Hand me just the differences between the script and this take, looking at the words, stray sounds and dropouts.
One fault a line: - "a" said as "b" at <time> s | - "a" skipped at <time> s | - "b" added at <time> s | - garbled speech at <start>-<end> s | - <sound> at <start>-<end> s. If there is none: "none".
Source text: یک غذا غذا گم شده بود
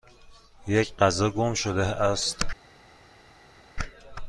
- "غذا" skipped at 1.3 s
- "بود" said as "است" at 1.9 s